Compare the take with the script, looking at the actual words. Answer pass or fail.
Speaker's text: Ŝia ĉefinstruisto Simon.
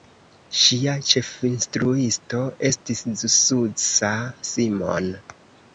fail